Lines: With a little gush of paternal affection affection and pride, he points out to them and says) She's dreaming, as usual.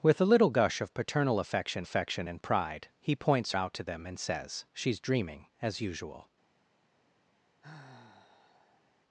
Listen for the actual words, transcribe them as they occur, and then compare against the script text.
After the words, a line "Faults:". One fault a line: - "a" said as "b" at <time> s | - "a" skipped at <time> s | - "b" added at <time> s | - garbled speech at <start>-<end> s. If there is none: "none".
With a little gush of paternal affection affection and pride, he points out to them and says) She's dreaming, as usual.
Faults:
none